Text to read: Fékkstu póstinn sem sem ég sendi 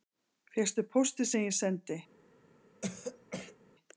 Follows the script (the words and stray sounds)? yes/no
no